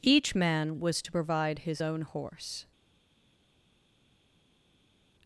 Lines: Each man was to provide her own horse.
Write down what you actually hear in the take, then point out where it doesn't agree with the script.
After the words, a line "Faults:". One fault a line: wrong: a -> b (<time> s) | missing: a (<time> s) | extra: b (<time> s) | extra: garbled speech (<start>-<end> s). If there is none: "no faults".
Each man was to provide his own horse.
Faults:
wrong: her -> his (1.6 s)